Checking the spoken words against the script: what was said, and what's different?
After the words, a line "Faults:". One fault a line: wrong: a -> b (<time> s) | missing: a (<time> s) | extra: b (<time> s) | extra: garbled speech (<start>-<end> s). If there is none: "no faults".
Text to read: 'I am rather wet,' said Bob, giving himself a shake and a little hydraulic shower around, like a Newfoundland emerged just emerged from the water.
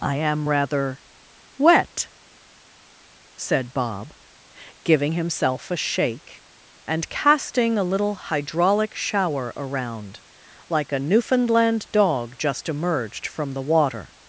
'I am rather wet,' said Bob, giving himself a shake and casting a little hydraulic shower around, like a Newfoundland dog just emerged from the water.
Faults:
extra: casting (7.1 s)
wrong: emerged -> dog (11.9 s)